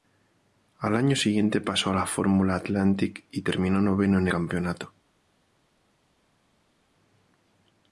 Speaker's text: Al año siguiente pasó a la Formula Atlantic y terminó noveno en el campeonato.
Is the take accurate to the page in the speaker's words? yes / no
no